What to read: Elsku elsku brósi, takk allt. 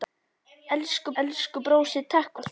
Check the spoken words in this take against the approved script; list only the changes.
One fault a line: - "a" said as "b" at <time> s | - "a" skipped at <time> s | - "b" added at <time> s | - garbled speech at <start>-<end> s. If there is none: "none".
none